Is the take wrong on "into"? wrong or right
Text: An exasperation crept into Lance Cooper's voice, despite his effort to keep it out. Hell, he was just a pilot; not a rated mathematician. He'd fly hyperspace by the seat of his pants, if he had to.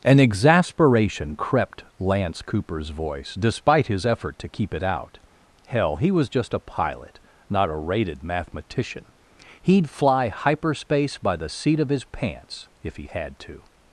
wrong